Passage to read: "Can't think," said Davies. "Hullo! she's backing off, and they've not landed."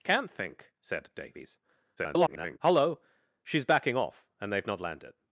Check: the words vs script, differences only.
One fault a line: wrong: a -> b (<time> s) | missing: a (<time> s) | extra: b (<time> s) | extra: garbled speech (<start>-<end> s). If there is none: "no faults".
extra: garbled speech (2.0-2.6 s)